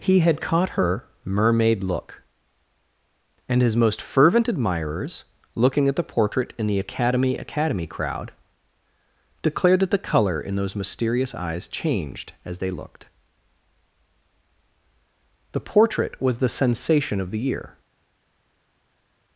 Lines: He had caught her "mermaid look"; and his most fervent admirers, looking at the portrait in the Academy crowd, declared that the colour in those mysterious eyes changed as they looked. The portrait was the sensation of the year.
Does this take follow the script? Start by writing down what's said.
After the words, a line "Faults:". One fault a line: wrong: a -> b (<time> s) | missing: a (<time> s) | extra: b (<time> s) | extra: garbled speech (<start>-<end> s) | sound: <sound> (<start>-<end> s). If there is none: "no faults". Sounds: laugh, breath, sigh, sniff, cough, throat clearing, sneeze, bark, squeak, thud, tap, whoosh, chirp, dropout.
He had caught her "mermaid look"; and his most fervent admirers, looking at the portrait in the Academy Academy crowd, declared that the colour in those mysterious eyes changed as they looked. The portrait was the sensation of the year.
Faults:
extra: Academy (7.4 s)